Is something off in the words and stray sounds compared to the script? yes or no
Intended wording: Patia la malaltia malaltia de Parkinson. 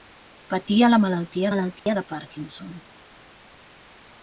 yes